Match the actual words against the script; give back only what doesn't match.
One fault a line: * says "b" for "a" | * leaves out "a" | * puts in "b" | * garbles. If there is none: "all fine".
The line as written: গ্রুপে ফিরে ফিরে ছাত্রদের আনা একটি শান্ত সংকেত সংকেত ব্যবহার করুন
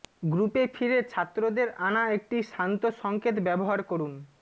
* leaves out "ফিরে"
* leaves out "সংকেত"